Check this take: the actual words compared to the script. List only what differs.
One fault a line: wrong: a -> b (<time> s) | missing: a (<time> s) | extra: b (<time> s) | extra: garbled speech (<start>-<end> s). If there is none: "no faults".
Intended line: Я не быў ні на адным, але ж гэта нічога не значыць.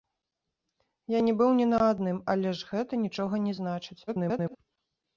extra: garbled speech (4.1-4.6 s)